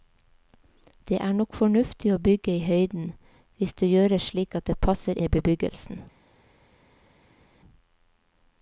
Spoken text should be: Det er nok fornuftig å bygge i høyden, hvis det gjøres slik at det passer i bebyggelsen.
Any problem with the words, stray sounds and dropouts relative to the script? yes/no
no